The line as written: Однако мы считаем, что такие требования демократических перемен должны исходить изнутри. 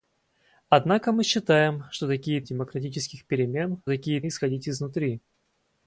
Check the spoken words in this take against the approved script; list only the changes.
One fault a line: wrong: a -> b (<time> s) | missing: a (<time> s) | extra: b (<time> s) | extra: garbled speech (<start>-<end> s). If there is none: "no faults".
missing: требования (2.4 s)
wrong: должны -> такие (3.9 s)